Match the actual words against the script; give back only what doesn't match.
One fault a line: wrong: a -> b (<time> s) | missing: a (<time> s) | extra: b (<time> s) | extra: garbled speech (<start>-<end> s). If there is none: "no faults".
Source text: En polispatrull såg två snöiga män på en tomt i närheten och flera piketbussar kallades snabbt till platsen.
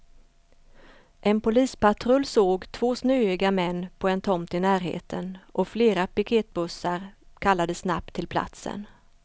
no faults